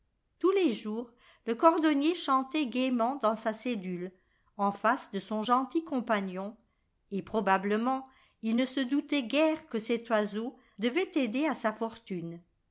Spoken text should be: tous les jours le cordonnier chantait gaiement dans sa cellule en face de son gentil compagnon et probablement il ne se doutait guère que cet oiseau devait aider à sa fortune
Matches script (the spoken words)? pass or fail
pass